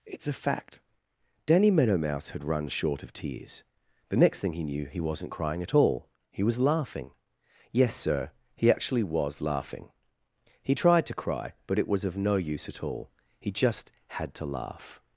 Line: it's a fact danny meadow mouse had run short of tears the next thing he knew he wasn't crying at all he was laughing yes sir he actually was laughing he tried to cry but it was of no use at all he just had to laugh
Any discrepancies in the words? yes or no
no